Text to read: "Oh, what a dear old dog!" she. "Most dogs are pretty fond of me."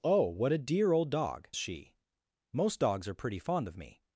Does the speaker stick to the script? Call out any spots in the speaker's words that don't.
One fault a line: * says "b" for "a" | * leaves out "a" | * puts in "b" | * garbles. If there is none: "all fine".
all fine